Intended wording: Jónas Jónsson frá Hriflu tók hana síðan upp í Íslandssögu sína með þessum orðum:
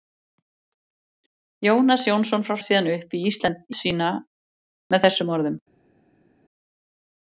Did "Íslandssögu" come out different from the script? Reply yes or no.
yes